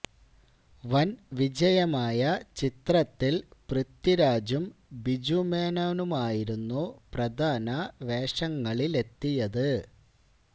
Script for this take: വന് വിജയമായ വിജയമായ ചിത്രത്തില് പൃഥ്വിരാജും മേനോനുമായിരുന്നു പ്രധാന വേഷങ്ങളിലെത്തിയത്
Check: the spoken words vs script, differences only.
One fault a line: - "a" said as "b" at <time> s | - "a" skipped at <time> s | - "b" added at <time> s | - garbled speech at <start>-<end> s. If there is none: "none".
- "വിജയമായ" skipped at 2.2 s
- "ബിജു" added at 5.0 s